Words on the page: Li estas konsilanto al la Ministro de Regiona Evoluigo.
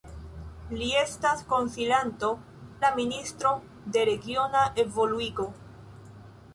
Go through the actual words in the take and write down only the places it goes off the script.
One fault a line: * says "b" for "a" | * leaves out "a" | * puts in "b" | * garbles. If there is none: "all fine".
* leaves out "al"